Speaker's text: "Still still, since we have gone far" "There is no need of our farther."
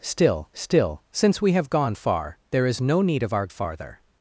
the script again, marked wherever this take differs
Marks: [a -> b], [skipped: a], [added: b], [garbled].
"Still still, since we have gone far" "There is no need of our farther."